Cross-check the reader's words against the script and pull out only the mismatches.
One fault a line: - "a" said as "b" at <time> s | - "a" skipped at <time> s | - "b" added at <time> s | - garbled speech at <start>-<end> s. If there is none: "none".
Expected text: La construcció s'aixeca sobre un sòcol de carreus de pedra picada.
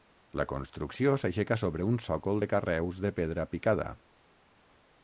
none